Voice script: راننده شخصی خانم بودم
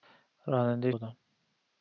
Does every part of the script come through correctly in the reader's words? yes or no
no